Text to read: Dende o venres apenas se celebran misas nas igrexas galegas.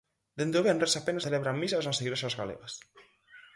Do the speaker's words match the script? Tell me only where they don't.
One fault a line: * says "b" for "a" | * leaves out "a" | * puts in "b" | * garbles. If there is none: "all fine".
* leaves out "se"